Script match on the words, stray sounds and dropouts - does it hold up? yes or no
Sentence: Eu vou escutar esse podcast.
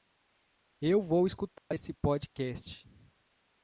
no